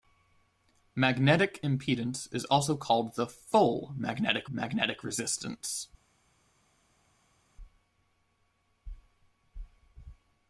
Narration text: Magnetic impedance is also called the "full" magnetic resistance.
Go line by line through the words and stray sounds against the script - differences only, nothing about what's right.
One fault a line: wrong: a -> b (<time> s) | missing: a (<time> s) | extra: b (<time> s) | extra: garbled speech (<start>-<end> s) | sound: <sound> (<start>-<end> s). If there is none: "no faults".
extra: magnetic (4.5 s)